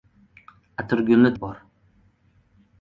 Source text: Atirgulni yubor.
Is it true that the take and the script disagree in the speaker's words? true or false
false